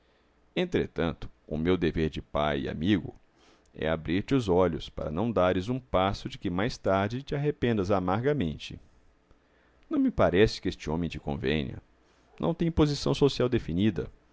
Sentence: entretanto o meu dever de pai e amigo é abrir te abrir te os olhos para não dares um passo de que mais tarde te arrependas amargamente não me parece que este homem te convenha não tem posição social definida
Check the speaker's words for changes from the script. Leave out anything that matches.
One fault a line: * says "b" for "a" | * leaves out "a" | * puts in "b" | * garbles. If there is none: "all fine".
* leaves out "abrir te"